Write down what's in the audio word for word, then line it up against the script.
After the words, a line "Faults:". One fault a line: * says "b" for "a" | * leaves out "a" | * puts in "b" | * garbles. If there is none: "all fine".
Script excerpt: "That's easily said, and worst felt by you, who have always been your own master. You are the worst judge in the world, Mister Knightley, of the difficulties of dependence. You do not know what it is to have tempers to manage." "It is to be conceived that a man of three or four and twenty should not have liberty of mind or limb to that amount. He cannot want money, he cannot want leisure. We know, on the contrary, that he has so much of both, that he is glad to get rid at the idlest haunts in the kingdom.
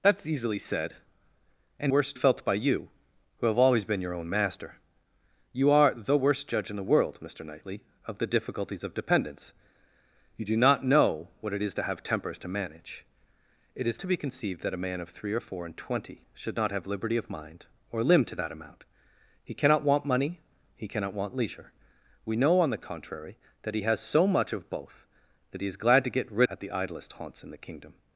"That's easily said, and worst felt by you, who have always been your own master. You are the worst judge in the world, Mister Knightley, of the difficulties of dependence. You do not know what it is to have tempers to manage." "It is to be conceived that a man of three or four and twenty should not have liberty of mind or limb to that amount. He cannot want money, he cannot want leisure. We know, on the contrary, that he has so much of both, that he is glad to get rid at the idlest haunts in the kingdom.
Faults:
all fine